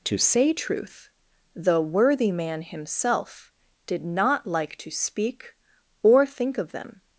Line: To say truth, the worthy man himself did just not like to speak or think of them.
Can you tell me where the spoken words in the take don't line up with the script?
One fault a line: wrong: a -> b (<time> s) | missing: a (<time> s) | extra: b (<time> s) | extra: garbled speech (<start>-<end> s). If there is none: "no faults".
missing: just (4.0 s)